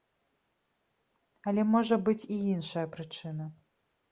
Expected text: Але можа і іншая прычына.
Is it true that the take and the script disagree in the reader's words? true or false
true